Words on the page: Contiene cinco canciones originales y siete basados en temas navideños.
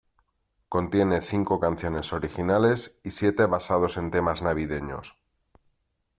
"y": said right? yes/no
yes